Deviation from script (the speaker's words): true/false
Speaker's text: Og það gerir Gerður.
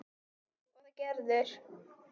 true